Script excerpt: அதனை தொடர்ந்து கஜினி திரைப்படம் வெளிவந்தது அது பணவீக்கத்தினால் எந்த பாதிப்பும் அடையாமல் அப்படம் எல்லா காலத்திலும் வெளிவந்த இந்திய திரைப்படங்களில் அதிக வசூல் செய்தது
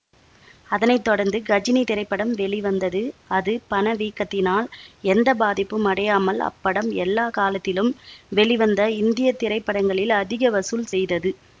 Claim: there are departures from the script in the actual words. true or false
false